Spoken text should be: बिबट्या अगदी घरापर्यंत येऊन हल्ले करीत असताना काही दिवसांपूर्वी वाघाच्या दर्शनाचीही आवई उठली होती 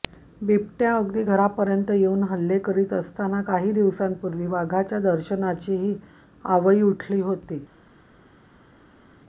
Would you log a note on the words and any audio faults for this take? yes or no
no